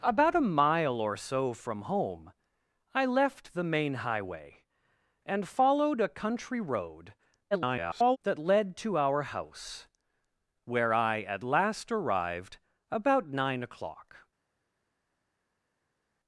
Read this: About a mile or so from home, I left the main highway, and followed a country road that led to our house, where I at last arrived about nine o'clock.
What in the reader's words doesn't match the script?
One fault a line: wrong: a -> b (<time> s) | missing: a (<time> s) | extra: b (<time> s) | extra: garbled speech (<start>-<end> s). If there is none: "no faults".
extra: garbled speech (7.5-8.2 s)